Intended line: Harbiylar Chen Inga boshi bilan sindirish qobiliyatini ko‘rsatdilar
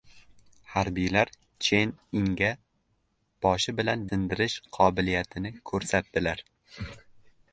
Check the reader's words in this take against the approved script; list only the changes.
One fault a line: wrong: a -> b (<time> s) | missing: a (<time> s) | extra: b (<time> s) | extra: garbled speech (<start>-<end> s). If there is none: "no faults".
no faults